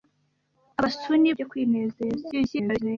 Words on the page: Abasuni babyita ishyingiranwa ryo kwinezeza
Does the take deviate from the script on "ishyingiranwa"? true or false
true